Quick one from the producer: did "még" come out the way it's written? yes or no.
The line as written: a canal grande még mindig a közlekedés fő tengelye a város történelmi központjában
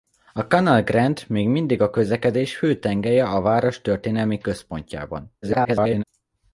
yes